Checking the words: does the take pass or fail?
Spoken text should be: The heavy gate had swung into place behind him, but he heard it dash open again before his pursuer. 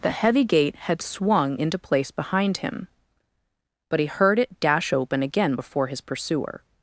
pass